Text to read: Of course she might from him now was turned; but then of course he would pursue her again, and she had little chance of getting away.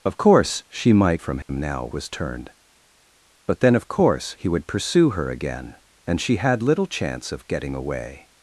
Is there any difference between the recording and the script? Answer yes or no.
no